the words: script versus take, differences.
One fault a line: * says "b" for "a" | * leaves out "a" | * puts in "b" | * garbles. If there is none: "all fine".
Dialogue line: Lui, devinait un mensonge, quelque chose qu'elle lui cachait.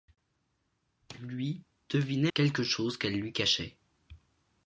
* leaves out "un mensonge"